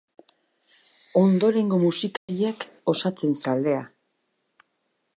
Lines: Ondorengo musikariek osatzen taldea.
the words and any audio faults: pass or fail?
fail